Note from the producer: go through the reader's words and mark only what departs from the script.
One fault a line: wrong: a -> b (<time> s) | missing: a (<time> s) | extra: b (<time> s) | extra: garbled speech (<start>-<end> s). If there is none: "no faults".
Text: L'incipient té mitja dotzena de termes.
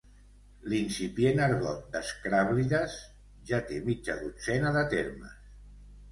extra: argot d'Escràblides ja (1.5 s)